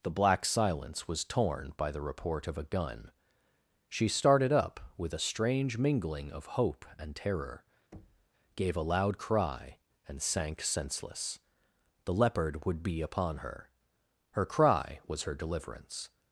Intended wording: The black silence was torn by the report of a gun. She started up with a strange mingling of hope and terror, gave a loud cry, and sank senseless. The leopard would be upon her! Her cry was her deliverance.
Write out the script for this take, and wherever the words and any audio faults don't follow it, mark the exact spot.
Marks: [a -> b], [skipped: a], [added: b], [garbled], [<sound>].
The black silence was torn by the report of a gun. She started up with a strange mingling of hope and terror, [thud] gave a loud cry, and sank senseless. The leopard would be upon her! Her cry was her deliverance.